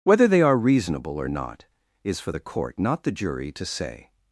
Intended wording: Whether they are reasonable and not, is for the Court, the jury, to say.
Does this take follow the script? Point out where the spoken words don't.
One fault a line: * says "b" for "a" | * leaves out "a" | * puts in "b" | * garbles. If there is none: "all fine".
* says "or" for "and"
* puts in "not"